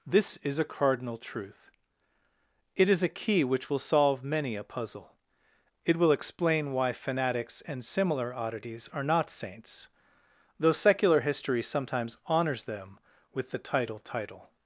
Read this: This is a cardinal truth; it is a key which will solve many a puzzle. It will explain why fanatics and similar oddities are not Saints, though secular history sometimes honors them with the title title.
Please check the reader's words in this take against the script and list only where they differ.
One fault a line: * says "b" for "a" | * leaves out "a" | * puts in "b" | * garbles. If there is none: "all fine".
all fine